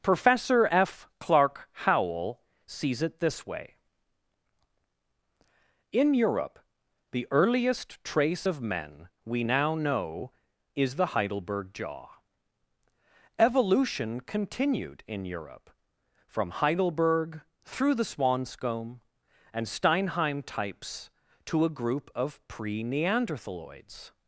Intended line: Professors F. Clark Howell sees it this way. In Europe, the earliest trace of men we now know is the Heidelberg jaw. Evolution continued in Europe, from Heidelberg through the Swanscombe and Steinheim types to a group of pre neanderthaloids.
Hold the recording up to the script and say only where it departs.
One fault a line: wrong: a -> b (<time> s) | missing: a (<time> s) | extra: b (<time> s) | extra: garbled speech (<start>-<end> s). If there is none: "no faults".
wrong: Professors -> Professor (0.0 s)